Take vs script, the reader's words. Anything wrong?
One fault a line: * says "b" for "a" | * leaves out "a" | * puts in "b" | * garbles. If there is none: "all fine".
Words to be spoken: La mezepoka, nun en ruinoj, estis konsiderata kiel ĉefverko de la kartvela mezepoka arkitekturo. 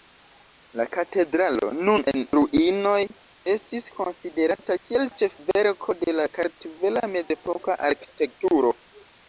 * says "katedralo" for "mezepoka"